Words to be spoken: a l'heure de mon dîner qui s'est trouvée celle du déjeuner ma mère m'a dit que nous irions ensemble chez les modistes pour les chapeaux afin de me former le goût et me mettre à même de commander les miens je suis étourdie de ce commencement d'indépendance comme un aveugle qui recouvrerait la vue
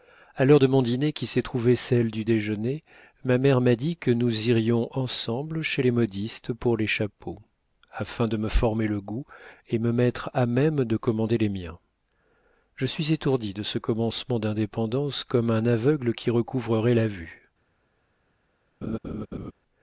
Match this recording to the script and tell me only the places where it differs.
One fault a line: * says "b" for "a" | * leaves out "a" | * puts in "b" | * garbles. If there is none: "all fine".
all fine